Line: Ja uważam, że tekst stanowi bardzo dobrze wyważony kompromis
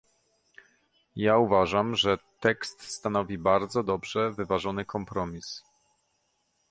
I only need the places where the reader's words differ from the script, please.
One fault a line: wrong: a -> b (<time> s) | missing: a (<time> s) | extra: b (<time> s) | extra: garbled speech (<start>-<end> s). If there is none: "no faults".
no faults